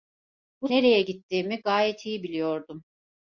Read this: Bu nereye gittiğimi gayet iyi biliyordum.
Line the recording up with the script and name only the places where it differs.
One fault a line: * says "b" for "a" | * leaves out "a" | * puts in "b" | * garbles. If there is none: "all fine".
all fine